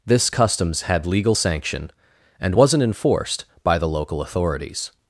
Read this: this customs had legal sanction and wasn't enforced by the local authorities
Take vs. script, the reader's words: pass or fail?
pass